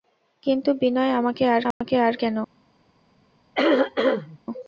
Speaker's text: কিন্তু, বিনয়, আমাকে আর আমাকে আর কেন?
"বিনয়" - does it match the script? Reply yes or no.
yes